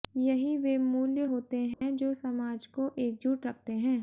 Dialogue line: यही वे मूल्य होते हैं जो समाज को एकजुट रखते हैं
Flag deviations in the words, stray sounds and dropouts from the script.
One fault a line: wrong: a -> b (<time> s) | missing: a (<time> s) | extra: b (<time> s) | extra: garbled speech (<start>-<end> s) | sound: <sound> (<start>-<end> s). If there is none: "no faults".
sound: dropout (1.7-1.8 s)